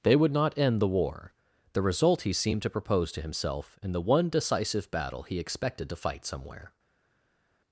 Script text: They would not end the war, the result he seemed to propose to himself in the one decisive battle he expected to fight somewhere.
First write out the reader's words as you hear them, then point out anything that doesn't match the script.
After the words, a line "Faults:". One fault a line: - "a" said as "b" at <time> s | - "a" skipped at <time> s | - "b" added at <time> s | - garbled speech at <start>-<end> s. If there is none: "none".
They would not end the war, the result he seemed to propose to himself in the one decisive battle he expected to fight somewhere.
Faults:
none